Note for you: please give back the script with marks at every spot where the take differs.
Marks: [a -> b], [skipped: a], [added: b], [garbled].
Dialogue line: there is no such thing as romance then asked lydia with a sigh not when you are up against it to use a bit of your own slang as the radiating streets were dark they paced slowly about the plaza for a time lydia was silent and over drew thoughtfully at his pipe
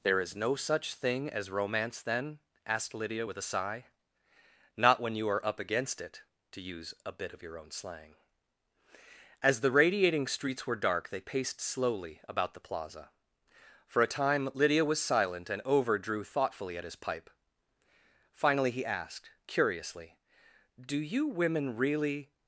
there is no such thing as romance then asked lydia with a sigh not when you are up against it to use a bit of your own slang as the radiating streets were dark they paced slowly about the plaza for a time lydia was silent and over drew thoughtfully at his pipe [added: finally he asked curiously do you women really]